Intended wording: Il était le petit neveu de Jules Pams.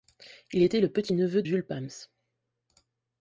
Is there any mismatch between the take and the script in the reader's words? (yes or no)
yes